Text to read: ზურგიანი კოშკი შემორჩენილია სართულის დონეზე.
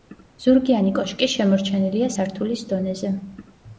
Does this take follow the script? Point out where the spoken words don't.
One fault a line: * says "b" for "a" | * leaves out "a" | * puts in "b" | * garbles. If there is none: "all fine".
all fine